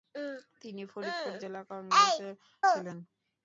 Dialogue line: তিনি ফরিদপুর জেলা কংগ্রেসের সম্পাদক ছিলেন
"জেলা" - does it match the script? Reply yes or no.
yes